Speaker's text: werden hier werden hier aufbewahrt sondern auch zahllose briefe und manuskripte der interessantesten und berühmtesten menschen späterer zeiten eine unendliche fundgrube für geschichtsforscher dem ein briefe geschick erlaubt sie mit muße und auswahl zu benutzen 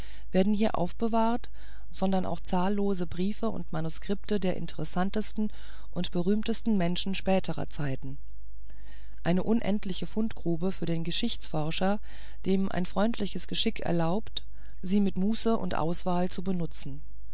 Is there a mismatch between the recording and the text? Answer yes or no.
yes